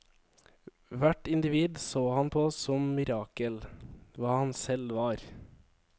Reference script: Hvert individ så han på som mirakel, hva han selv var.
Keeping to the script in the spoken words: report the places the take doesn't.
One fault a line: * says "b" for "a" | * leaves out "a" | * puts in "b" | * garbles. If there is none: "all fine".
all fine